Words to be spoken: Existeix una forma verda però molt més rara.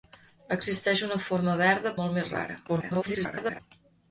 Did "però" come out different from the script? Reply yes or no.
yes